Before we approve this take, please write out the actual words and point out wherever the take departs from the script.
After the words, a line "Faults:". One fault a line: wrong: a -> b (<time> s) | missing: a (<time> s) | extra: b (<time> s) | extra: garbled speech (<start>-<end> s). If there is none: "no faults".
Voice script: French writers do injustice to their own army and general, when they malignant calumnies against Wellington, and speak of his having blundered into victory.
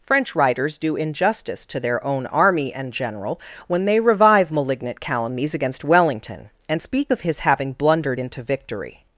French writers do injustice to their own army and general, when they revive malignant calumnies against Wellington, and speak of his having blundered into victory.
Faults:
extra: revive (4.0 s)